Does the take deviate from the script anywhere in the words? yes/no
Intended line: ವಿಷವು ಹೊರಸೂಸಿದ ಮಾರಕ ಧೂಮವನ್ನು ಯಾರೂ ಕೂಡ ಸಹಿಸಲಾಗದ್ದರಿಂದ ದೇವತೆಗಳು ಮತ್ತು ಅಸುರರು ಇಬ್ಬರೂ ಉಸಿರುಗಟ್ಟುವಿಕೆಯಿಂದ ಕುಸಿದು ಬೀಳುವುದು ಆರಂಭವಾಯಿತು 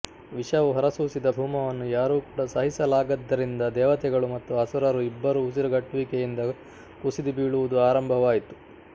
yes